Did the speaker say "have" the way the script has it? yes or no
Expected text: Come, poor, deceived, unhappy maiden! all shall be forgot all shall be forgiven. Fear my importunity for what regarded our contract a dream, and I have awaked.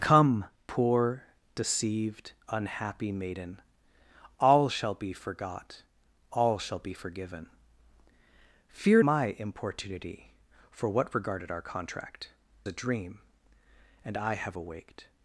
yes